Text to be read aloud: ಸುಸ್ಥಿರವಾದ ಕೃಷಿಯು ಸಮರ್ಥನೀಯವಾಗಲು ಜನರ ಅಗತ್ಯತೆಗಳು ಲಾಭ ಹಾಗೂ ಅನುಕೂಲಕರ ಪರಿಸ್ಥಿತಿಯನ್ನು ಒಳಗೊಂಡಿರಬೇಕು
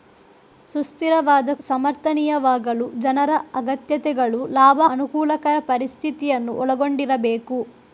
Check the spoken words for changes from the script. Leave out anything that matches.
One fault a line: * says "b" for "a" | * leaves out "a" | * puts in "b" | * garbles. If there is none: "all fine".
* leaves out "ಕೃಷಿಯು"
* leaves out "ಹಾಗೂ"